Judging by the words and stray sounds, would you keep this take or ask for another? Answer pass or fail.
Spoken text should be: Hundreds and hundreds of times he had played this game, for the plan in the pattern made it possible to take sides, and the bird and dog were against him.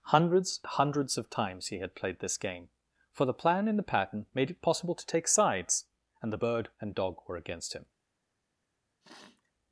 fail